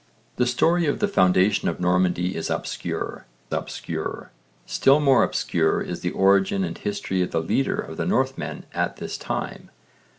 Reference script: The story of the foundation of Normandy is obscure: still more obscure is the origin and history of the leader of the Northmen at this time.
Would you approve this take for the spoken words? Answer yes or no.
no